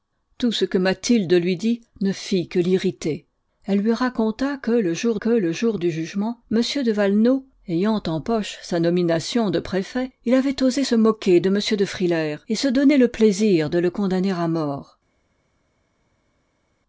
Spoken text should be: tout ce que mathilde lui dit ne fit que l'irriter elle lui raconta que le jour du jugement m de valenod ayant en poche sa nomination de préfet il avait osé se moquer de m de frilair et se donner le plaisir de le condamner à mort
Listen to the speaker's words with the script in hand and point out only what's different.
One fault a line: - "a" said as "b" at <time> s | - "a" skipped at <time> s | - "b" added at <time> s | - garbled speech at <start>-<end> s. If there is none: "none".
- "que le jour" added at 5.1 s